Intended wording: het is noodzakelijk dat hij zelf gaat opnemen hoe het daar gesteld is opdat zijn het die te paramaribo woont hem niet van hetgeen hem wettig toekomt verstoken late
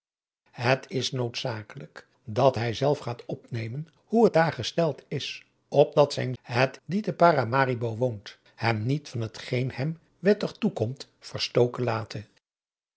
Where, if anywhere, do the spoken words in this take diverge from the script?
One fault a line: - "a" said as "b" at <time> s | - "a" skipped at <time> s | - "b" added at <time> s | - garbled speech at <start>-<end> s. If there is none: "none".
none